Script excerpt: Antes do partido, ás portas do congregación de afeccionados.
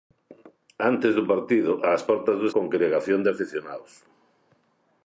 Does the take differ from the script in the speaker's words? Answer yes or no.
no